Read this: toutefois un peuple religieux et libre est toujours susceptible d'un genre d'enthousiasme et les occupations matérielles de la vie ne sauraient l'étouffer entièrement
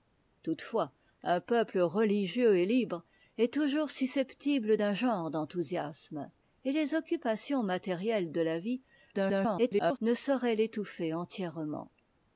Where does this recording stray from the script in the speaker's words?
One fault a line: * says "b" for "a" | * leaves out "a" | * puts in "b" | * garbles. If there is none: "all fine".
* garbles